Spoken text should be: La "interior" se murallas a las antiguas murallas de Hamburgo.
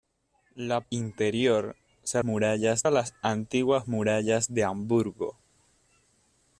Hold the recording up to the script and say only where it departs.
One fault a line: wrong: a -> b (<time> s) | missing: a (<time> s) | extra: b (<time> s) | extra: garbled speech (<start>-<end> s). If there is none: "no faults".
no faults